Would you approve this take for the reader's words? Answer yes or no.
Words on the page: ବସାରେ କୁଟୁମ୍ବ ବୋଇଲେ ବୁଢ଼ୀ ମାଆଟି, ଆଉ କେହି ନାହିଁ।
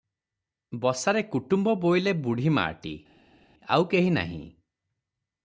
yes